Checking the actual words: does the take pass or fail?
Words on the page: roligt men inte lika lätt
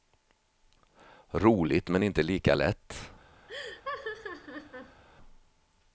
pass